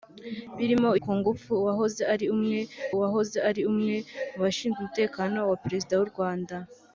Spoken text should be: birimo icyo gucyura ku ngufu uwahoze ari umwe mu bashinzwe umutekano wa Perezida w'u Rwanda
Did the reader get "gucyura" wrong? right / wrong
wrong